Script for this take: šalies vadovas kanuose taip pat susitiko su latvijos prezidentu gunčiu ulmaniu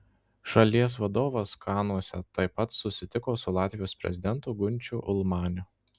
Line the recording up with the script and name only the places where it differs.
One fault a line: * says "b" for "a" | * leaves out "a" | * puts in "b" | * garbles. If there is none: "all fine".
all fine